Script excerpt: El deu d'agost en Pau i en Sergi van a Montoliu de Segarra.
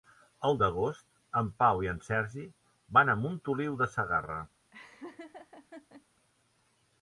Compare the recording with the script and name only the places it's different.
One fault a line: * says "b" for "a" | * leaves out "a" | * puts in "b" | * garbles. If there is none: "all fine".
* leaves out "deu"